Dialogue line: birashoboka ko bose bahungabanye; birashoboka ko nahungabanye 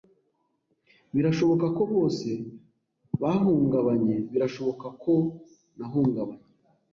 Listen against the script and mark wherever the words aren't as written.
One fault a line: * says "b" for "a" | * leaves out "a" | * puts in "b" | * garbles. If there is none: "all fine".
all fine